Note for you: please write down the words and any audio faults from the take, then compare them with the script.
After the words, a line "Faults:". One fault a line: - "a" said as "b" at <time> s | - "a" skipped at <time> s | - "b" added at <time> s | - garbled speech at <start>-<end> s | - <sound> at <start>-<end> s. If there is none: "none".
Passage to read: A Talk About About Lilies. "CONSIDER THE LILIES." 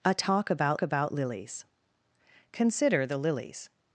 A Talk About About Lilies. "CONSIDER THE LILIES."
Faults:
none